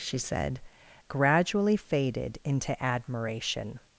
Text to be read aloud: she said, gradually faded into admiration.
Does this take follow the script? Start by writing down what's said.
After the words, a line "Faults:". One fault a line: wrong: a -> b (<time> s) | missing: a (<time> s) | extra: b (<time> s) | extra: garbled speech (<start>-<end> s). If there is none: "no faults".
she said, gradually faded into admiration.
Faults:
no faults